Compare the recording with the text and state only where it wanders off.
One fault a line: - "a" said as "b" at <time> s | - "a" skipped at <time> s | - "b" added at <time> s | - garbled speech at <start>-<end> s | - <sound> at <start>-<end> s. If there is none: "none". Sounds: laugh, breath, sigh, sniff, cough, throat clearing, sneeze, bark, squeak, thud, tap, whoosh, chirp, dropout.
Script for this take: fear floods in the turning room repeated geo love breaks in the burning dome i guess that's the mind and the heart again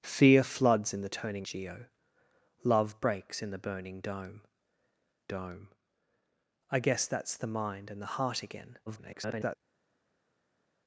- "room repeated" skipped at 1.5 s
- "dome" added at 5.3 s
- garbled speech at 8.9-9.6 s